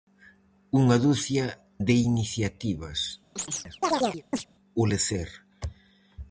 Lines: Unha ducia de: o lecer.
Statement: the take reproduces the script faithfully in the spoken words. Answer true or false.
false